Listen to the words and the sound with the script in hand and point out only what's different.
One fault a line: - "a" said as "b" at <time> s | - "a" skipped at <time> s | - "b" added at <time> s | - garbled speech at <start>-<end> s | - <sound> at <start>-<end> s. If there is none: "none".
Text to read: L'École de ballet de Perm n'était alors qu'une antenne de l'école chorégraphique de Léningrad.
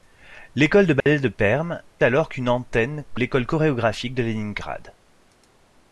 - dropout at 1.0-1.1 s
- "n'était" skipped at 1.8 s
- "de" skipped at 3.0 s